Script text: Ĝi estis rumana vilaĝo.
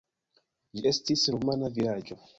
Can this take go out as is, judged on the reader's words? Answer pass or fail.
pass